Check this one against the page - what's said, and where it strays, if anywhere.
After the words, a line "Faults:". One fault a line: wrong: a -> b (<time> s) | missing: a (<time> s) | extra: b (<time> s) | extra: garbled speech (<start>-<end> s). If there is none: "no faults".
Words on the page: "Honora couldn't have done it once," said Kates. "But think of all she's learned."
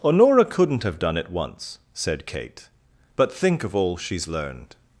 "Honora couldn't have done it once," said Kate. "But think of all she's learned."
Faults:
wrong: Kates -> Kate (2.2 s)